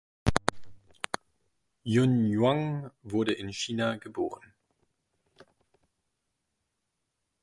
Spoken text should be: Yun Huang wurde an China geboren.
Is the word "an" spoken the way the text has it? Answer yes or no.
no